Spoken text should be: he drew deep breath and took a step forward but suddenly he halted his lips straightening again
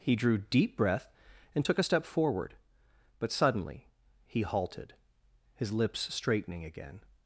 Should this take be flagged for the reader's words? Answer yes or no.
no